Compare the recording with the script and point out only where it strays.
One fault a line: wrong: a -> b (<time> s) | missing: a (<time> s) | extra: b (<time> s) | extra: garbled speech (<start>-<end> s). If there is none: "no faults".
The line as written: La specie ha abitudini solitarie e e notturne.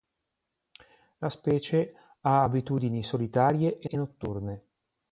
no faults